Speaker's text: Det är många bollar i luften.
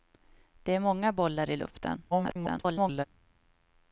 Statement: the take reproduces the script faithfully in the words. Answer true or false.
false